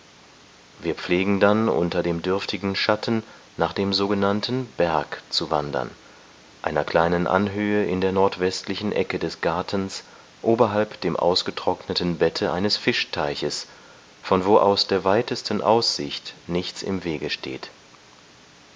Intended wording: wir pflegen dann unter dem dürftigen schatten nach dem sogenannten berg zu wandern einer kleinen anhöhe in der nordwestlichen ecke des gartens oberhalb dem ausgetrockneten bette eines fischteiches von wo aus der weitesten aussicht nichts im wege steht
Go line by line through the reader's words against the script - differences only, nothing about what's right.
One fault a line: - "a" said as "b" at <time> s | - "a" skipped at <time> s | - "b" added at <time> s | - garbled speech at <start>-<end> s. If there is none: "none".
none